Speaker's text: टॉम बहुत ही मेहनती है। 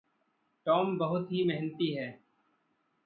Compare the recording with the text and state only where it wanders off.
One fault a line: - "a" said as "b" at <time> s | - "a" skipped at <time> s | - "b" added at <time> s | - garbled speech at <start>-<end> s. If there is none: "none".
none